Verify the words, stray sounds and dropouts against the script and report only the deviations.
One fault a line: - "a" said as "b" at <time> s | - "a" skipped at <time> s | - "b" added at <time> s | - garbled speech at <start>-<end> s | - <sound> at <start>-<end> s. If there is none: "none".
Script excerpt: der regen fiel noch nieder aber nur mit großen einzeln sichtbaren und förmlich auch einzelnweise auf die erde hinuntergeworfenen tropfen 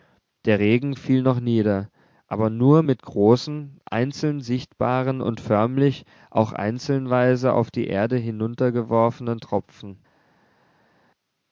none